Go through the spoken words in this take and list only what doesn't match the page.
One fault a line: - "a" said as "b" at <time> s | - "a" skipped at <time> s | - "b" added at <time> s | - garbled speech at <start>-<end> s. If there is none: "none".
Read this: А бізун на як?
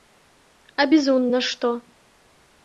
- "як" said as "што" at 1.5 s